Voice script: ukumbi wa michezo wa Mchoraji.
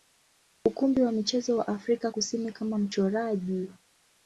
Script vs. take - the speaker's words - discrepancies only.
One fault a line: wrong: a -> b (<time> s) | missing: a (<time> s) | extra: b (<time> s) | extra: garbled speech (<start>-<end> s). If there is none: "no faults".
extra: Afrika Kusini kama (1.7 s)